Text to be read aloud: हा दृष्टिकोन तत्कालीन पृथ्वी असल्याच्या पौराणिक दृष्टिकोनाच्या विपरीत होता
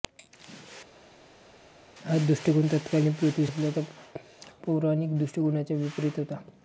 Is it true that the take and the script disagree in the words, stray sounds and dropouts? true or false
false